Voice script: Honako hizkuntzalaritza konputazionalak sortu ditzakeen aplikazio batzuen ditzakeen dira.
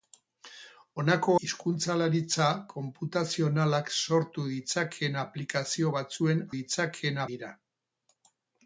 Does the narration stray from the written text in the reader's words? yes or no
no